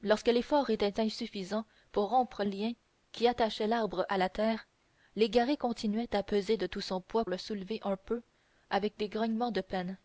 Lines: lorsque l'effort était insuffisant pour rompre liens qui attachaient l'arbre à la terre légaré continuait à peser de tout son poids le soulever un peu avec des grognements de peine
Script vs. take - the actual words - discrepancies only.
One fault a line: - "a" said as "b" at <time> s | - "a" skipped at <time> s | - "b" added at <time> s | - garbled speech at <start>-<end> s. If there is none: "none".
none